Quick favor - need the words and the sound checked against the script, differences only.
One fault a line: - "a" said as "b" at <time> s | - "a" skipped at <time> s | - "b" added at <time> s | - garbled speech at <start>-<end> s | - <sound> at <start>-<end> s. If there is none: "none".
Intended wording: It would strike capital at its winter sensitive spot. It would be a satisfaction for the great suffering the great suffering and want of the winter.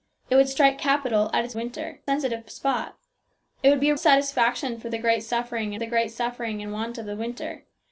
none